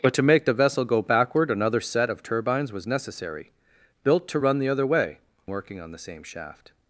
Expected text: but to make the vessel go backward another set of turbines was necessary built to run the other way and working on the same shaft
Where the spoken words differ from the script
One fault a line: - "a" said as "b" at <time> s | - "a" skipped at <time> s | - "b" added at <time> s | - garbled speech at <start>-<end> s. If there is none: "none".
- "and" skipped at 5.2 s